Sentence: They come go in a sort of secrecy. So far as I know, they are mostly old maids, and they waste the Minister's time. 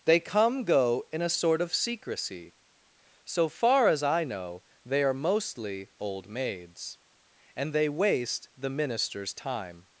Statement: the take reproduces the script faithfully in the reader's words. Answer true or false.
true